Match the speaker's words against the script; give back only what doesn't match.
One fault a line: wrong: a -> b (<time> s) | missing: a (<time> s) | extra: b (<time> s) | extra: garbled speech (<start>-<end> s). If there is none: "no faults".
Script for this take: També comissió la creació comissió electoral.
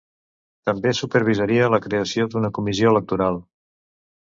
wrong: comissió -> supervisaria (1.0 s)
extra: d'una (2.3 s)